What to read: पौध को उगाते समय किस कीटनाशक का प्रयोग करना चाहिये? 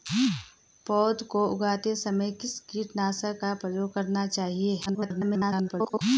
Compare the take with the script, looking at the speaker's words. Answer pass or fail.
fail